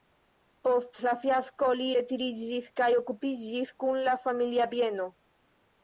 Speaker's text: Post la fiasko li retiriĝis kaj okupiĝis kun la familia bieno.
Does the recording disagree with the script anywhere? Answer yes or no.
no